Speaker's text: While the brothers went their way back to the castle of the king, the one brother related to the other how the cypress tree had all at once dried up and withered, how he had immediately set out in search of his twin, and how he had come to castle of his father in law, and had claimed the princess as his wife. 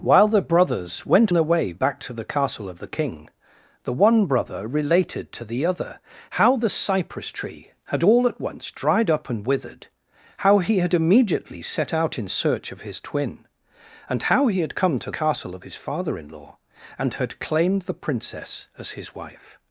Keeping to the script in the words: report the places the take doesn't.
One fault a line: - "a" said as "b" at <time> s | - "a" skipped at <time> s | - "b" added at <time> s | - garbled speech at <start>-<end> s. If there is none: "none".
none